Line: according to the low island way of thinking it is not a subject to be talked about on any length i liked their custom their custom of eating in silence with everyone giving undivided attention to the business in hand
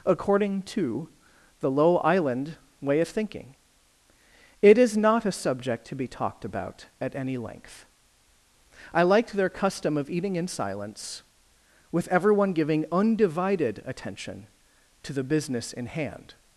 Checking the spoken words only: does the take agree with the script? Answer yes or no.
no